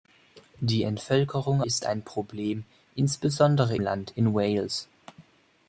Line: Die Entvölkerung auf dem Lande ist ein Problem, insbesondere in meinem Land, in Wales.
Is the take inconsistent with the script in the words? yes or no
yes